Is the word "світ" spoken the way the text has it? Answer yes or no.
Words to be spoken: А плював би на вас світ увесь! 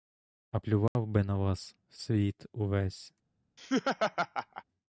yes